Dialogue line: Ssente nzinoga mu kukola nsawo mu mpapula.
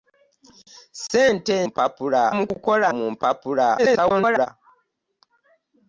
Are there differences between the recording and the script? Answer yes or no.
yes